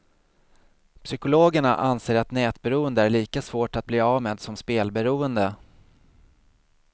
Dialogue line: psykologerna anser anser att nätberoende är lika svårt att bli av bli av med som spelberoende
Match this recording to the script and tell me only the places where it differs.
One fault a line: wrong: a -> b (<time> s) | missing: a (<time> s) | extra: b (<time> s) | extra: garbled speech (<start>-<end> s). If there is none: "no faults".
missing: anser (2.1 s)
missing: bli av (4.2 s)